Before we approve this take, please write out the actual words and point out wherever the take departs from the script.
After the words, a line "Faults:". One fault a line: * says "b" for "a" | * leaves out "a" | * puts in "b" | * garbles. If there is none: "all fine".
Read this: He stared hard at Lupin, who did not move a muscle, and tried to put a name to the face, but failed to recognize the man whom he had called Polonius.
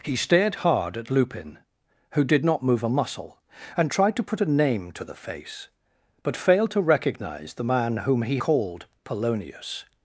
He stared hard at Lupin, who did not move a muscle, and tried to put a name to the face, but failed to recognize the man whom he called Polonius.
Faults:
* leaves out "had"